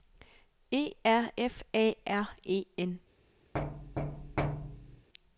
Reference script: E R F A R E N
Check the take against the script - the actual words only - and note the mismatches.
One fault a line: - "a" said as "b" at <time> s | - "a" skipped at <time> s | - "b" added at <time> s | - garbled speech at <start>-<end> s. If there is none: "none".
none